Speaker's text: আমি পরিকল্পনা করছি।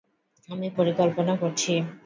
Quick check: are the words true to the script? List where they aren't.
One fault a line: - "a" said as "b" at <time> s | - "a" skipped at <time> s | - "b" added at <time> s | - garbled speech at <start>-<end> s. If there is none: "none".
none